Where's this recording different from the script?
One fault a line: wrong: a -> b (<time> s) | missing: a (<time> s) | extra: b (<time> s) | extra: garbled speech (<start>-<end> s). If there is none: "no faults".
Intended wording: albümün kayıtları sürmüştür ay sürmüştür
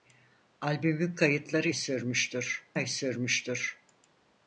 no faults